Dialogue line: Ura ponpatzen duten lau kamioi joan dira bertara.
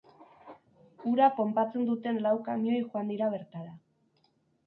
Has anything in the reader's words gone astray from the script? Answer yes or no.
no